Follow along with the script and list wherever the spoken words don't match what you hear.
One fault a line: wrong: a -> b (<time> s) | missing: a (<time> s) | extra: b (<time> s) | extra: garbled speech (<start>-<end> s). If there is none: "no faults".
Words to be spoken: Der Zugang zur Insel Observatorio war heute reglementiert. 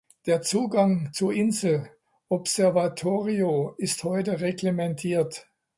wrong: war -> ist (3.8 s)